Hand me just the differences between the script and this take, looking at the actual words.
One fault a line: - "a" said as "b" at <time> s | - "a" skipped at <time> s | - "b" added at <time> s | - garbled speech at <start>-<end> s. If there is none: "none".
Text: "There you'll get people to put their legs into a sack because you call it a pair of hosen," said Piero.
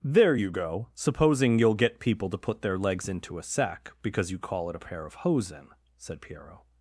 - "you go supposing" added at 0.3 s